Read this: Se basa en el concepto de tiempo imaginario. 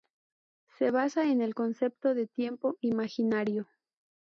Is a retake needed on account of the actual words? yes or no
no